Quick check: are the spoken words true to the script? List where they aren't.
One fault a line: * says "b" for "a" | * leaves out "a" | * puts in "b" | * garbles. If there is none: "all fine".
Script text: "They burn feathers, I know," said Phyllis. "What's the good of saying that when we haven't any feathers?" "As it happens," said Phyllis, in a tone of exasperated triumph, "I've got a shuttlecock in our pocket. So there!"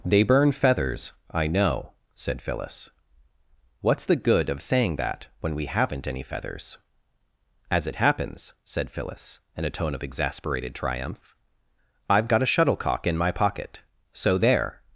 * says "my" for "our"